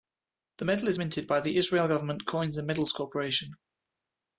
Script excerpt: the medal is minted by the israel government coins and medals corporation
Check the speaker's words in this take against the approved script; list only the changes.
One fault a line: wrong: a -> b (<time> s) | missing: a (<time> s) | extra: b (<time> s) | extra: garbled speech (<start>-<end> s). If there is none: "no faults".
no faults